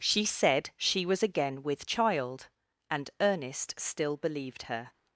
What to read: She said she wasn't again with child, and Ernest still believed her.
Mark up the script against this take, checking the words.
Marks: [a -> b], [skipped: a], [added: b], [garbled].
She said she [wasn't -> was] again with child, and Ernest still believed her.